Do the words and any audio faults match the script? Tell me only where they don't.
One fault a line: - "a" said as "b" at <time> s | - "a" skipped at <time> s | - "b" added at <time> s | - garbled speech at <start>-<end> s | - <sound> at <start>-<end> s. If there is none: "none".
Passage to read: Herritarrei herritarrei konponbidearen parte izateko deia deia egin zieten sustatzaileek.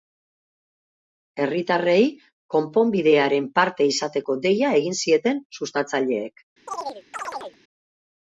- "herritarrei" skipped at 2.0 s
- "deia" skipped at 4.8 s
- chirp at 6.7-7.6 s